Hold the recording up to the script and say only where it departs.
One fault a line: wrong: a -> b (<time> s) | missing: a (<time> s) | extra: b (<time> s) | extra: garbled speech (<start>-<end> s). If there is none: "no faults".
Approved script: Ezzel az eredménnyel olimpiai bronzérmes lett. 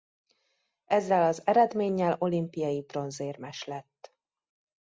no faults